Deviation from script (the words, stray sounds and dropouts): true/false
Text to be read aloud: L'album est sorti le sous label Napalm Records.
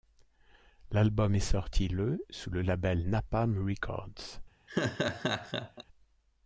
true